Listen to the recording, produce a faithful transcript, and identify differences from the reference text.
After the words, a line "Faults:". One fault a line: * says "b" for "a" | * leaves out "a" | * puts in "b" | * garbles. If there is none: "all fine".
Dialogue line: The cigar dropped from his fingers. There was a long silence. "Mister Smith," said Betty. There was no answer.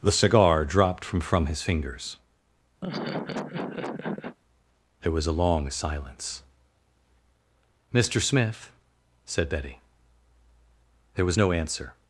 The cigar dropped from from his fingers. There was a long silence. "Mister Smith," said Betty. There was no answer.
Faults:
* puts in "from"